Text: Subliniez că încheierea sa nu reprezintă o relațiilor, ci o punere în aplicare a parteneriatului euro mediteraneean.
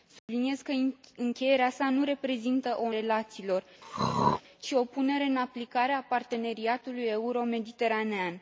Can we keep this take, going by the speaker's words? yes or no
yes